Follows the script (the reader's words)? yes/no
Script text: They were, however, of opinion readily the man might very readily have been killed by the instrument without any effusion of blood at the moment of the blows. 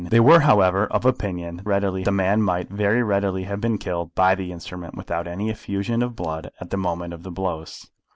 yes